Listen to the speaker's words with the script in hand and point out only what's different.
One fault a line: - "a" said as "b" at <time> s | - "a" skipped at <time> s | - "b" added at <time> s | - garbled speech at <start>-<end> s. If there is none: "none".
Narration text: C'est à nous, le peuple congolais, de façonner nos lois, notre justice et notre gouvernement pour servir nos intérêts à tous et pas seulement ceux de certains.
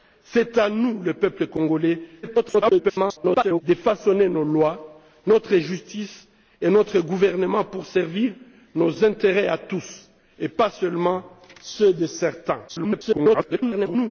- garbled speech at 2.2-3.6 s
- garbled speech at 12.7-14.1 s